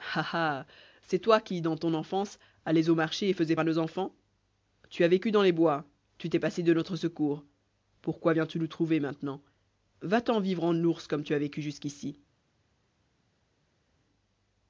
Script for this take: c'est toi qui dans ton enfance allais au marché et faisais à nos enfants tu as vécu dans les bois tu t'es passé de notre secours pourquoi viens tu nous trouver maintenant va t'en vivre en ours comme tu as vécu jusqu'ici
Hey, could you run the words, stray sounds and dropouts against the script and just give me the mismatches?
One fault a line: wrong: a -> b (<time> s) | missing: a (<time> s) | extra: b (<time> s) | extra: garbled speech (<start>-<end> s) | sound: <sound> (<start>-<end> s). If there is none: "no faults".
no faults